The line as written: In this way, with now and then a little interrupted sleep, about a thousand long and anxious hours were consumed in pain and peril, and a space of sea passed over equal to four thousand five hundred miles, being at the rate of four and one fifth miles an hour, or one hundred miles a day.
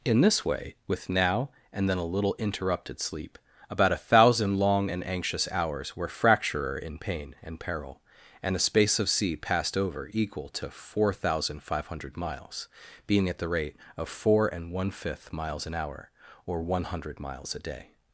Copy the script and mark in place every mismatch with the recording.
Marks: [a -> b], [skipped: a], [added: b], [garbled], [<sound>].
In this way, with now and then a little interrupted sleep, about a thousand long and anxious hours were [consumed -> fracturer] in pain and peril, and a space of sea passed over equal to four thousand five hundred miles, being at the rate of four and one fifth miles an hour, or one hundred miles a day.